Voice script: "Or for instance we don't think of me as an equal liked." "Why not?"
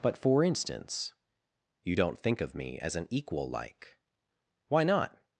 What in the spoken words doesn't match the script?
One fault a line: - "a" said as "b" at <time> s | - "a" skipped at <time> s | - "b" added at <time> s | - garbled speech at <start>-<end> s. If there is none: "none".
- "Or" said as "But" at 0.0 s
- "we" said as "you" at 1.8 s
- "liked" said as "like" at 3.5 s